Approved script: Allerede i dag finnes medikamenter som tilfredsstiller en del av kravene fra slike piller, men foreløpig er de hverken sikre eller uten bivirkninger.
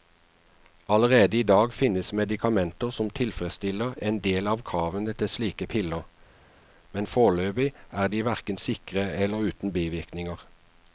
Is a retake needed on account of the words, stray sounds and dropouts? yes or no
yes